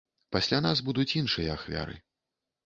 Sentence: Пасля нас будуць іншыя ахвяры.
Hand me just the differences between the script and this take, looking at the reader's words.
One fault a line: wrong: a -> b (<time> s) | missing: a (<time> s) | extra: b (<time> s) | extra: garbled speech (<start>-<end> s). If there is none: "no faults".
no faults